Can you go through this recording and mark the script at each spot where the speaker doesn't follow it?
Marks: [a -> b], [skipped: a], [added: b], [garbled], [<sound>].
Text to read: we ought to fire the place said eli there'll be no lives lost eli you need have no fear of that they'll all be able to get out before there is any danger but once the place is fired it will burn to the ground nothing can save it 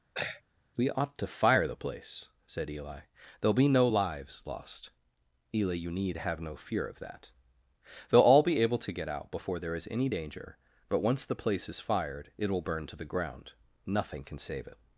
[throat clearing] we ought to fire the place said eli there'll be no lives lost eli you need have no fear of that they'll all be able to get out before there is any danger but once the place is fired it will burn to the ground nothing can save it